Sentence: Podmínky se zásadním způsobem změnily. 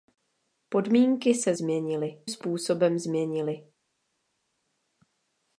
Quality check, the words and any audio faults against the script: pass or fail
fail